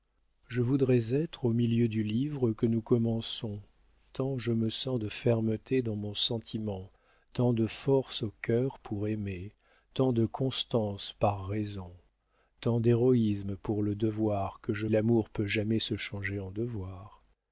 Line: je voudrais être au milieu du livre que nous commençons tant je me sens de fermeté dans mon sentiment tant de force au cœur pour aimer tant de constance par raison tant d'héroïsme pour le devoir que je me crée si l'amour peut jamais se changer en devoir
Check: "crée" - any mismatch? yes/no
yes